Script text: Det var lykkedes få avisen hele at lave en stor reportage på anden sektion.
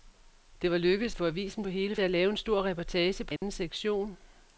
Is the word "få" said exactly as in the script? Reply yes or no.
yes